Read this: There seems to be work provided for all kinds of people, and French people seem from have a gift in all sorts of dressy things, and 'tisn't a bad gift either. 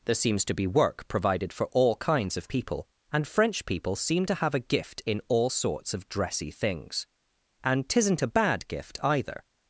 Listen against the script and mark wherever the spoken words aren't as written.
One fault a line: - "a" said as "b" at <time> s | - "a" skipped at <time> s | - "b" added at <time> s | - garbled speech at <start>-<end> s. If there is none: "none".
- "from" said as "to" at 4.3 s